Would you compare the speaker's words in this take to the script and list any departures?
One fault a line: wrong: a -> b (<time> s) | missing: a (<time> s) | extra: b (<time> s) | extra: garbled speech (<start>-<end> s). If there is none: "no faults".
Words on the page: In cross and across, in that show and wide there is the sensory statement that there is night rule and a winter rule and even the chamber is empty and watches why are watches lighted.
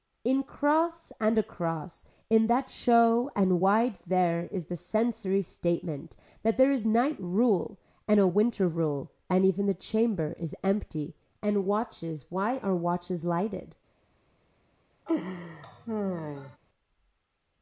no faults